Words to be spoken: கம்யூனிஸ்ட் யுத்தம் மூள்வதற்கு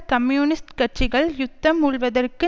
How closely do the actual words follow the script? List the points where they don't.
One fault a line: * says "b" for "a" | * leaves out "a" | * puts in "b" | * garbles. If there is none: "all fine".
* puts in "கட்சிகள்"